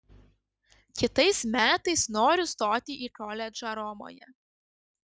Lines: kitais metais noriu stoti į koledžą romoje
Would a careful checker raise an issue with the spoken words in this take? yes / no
no